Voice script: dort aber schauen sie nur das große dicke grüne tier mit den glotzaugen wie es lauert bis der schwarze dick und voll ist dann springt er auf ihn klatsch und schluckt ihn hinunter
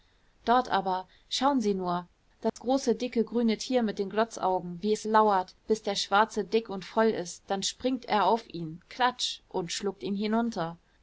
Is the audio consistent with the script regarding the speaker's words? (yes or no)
yes